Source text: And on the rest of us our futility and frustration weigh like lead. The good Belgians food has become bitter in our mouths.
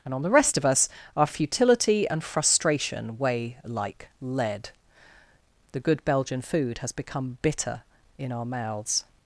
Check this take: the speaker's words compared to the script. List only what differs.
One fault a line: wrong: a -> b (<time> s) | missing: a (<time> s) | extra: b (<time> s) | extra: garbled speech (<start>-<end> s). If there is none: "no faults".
wrong: Belgians -> Belgian (6.0 s)